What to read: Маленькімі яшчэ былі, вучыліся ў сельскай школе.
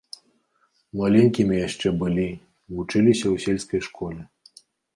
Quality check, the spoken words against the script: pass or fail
pass